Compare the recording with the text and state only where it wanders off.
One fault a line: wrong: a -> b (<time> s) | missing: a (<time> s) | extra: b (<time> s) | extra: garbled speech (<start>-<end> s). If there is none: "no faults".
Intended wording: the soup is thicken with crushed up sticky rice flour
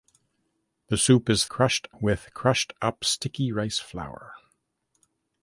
wrong: thicken -> crushed (1.5 s)